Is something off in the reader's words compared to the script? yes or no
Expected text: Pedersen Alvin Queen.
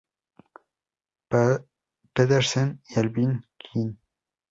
yes